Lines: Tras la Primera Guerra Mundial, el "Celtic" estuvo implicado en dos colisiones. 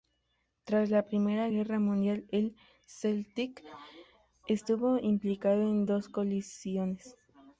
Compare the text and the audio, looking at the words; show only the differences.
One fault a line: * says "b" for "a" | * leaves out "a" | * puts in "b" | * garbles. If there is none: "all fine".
all fine